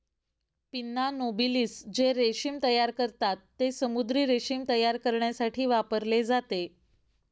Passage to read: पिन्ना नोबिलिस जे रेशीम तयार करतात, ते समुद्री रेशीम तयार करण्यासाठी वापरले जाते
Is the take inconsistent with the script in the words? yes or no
no